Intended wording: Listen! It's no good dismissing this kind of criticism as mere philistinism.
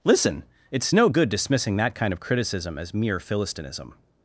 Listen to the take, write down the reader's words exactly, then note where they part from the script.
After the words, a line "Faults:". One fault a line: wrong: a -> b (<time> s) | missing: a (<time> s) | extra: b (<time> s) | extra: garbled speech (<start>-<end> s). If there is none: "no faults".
Listen! It's no good dismissing that kind of criticism as mere philistinism.
Faults:
wrong: this -> that (1.8 s)